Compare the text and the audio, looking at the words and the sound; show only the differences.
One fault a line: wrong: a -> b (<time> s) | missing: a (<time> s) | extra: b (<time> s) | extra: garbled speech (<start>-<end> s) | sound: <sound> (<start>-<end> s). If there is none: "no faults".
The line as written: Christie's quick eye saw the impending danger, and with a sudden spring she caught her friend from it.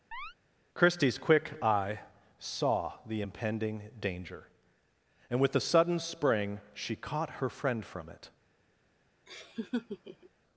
sound: chirp (0.1-0.3 s)
sound: laugh (9.3-10.3 s)